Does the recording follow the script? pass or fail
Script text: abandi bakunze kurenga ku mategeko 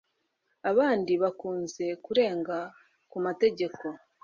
pass